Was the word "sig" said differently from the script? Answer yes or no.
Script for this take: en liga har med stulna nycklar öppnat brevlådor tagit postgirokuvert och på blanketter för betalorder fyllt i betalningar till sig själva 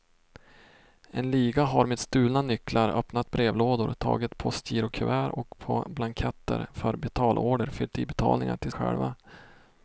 yes